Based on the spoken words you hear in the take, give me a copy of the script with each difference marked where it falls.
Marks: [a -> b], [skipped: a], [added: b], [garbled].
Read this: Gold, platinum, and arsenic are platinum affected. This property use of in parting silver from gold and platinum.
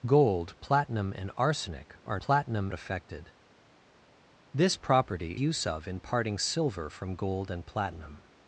Gold, platinum, and arsenic are platinum affected. This property use of in parting silver from gold and platinum.